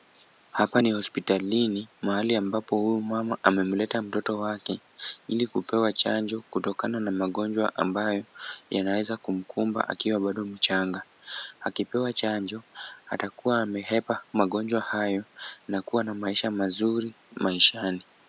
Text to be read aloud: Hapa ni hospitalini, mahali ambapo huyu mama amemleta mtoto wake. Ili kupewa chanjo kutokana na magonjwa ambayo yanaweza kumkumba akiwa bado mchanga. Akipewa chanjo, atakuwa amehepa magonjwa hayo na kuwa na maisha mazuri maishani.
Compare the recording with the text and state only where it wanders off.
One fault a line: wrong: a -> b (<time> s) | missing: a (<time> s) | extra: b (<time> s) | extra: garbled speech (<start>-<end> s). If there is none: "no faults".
no faults